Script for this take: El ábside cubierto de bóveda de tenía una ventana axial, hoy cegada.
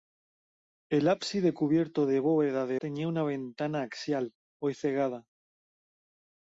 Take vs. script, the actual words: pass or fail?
pass